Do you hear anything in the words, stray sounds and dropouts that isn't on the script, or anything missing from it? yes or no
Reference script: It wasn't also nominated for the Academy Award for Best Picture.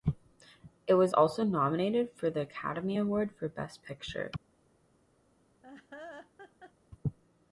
yes